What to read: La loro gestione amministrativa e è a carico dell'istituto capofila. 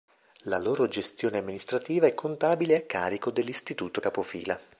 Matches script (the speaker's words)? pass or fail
fail